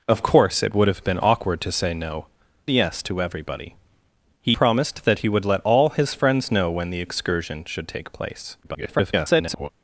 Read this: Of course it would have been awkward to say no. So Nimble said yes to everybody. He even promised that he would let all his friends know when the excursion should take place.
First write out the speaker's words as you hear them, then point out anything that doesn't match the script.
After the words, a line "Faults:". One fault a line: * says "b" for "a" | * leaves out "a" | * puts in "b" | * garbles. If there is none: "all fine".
Of course it would have been awkward to say no. Yes to everybody. He promised that he would let all his friends know when the excursion should take place. [garbled]
Faults:
* leaves out "So Nimble said"
* leaves out "even"
* garbles